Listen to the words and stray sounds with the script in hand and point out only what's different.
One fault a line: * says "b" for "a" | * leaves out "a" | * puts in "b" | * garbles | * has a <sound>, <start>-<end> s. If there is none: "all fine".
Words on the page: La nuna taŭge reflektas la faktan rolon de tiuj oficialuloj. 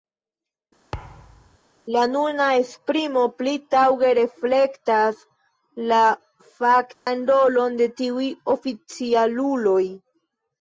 * has a thud, 0.9-1.6 s
* puts in "esprimo pli"
* has a dropout, 6.9-7.1 s